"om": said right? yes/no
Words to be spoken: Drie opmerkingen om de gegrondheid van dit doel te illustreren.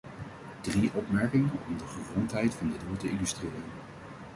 yes